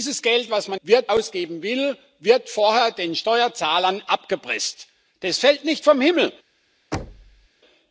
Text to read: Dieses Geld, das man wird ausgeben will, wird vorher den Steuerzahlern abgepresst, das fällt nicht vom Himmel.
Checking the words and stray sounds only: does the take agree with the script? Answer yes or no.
no